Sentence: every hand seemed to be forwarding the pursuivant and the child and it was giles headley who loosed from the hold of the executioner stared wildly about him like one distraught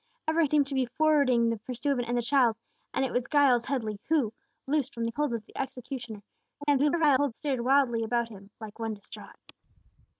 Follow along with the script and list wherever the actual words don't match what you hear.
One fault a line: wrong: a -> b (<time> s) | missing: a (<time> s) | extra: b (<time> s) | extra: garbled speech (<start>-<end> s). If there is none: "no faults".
missing: hand (0.5 s)
extra: garbled speech (6.6-7.3 s)